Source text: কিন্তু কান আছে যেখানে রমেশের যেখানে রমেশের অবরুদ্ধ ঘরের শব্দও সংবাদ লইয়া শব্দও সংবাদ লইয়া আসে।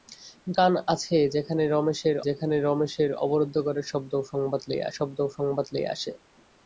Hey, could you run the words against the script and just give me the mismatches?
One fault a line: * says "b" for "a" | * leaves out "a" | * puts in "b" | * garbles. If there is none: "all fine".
all fine